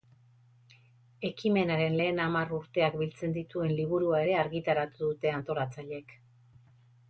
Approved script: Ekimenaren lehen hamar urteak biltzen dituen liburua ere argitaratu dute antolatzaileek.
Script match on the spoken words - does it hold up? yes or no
yes